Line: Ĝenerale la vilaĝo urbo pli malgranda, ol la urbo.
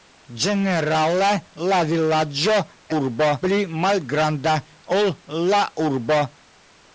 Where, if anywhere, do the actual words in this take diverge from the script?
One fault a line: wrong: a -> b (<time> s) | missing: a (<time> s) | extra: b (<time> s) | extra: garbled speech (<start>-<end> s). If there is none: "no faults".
no faults